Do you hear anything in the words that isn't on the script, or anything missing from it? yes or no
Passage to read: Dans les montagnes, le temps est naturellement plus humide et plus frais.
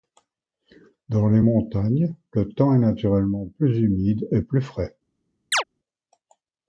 no